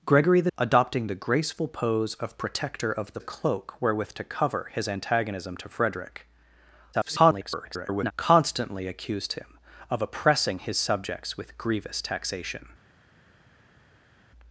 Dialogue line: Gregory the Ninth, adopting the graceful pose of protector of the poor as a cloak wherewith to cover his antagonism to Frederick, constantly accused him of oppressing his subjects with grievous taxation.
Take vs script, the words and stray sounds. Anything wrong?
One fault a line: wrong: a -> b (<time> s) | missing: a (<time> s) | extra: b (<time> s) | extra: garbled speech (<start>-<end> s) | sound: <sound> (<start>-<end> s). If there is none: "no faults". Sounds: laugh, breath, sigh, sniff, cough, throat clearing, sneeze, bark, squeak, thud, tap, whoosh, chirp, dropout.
missing: Ninth (0.5 s)
missing: poor as (3.2 s)
extra: garbled speech (6.9-8.1 s)